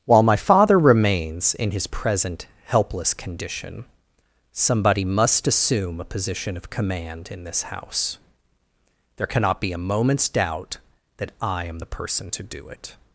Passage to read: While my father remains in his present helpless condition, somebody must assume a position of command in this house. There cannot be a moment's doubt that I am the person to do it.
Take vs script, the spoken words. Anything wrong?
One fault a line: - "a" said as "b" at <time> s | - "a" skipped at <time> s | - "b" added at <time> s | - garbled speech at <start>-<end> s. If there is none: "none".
none